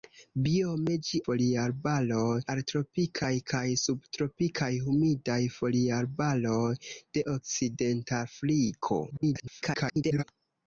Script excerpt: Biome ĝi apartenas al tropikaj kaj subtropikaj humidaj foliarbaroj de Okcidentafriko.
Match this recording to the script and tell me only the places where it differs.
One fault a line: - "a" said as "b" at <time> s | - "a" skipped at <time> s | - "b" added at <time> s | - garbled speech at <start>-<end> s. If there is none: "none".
- "apartenas" said as "foliarbaroj" at 1.3 s
- garbled speech at 9.1-10.2 s